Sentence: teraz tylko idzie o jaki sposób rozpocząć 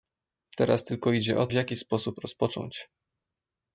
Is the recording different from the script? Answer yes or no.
no